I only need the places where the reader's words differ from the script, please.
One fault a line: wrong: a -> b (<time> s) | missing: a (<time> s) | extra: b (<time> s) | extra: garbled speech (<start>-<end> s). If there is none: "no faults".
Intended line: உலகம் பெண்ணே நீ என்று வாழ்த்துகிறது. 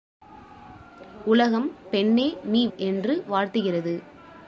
no faults